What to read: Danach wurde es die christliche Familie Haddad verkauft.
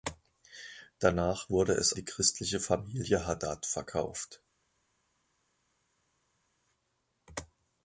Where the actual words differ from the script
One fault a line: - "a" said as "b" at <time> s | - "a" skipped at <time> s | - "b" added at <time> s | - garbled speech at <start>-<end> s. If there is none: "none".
none